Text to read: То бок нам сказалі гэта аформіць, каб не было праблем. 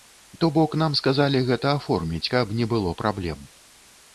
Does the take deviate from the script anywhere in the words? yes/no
no